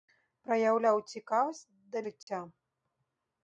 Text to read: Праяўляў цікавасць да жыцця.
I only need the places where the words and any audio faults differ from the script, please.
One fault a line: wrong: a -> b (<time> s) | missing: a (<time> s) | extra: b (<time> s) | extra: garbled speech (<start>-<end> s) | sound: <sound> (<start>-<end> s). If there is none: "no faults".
sound: dropout (2.2-2.3 s)